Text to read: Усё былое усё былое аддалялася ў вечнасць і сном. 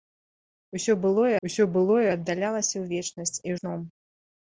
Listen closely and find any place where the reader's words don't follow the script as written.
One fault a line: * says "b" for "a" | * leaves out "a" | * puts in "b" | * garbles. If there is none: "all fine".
all fine